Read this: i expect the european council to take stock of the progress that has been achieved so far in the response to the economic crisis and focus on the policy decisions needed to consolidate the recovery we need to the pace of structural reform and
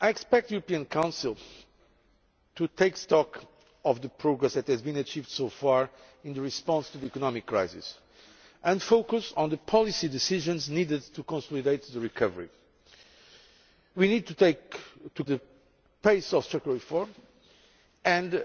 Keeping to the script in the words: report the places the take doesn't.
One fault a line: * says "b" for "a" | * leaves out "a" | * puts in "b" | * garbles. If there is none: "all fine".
all fine